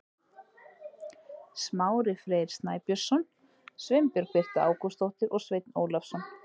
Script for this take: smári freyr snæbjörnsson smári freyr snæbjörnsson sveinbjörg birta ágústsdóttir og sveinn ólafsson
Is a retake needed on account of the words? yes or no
yes